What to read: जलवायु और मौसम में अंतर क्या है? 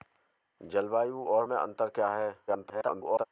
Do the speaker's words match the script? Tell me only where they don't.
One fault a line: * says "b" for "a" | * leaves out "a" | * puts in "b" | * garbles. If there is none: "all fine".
* leaves out "मौसम"
* garbles